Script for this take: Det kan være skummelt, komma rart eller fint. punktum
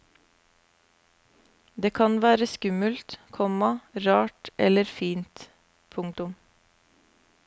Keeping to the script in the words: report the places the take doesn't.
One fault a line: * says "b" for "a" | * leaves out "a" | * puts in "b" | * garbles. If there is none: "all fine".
all fine